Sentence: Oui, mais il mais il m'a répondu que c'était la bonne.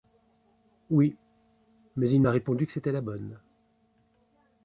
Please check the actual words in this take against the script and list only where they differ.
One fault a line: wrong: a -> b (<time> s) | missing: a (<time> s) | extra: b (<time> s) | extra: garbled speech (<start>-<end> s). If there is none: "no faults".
missing: mais il (2.2 s)